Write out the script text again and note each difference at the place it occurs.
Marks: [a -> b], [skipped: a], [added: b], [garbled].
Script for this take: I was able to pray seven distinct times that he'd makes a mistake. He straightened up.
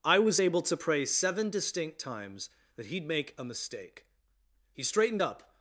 I was able to pray seven distinct times that he'd [makes -> make] a mistake. He straightened up.